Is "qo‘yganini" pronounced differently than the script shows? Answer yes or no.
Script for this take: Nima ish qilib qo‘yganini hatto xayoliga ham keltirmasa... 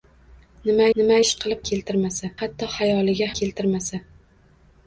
yes